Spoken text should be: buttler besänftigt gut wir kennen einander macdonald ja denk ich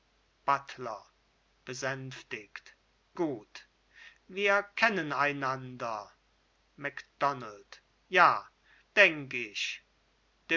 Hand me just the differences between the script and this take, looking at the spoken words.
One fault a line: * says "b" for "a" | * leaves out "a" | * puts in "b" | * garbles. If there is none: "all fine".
all fine